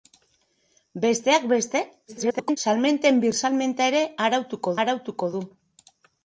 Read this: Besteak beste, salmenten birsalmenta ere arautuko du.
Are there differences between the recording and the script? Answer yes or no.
yes